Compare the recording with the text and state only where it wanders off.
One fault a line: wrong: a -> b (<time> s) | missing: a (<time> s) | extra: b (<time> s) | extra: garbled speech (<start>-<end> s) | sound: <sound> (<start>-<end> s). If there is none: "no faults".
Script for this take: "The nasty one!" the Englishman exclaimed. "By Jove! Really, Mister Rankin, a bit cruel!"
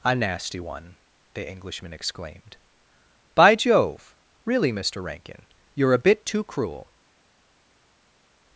wrong: The -> A (0.0 s)
extra: you're (5.7 s)
extra: too (6.2 s)